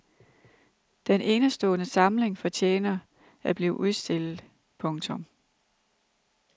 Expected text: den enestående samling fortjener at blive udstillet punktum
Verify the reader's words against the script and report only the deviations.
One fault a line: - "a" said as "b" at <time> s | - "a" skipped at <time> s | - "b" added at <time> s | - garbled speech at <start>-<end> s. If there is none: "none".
none